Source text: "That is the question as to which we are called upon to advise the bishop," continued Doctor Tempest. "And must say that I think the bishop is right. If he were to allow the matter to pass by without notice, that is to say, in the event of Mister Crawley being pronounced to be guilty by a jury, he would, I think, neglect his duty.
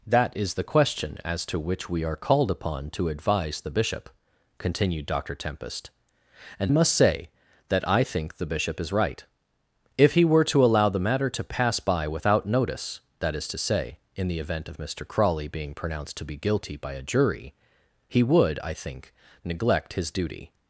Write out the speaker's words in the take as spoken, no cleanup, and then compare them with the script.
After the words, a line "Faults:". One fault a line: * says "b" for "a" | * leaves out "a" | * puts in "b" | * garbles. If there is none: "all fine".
"That is the question as to which we are called upon to advise the bishop," continued Doctor Tempest. "And must say that I think the bishop is right. If he were to allow the matter to pass by without notice, that is to say, in the event of Mister Crawley being pronounced to be guilty by a jury, he would, I think, neglect his duty.
Faults:
all fine